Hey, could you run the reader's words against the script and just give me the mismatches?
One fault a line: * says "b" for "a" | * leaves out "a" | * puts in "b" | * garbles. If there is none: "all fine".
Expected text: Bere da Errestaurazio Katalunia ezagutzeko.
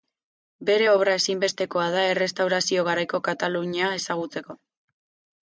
* puts in "obra ezinbestekoa"
* puts in "garaiko"